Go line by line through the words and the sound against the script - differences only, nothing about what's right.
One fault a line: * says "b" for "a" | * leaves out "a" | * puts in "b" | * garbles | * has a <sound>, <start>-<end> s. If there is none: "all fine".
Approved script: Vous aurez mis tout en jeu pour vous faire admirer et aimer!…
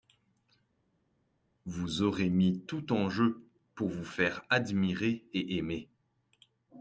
all fine